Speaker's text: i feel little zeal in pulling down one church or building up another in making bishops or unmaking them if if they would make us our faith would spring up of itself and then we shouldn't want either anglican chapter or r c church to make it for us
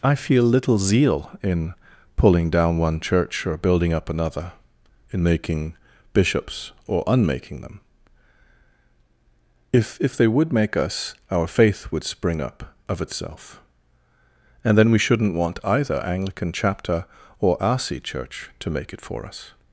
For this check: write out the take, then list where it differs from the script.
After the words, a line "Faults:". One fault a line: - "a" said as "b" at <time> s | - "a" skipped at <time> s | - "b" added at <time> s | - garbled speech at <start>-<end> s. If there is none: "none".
i feel little zeal in pulling down one church or building up another in making bishops or unmaking them if if they would make us our faith would spring up of itself and then we shouldn't want either anglican chapter or r c church to make it for us
Faults:
none